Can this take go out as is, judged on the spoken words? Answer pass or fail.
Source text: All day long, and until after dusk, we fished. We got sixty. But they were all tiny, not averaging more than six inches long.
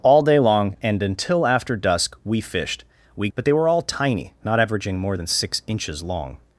fail